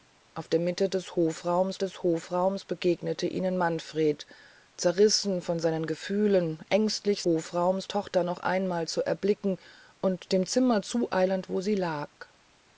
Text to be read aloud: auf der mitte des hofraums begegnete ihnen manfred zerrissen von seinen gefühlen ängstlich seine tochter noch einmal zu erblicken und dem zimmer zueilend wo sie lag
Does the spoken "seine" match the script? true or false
false